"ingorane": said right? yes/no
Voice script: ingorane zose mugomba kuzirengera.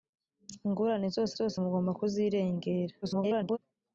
yes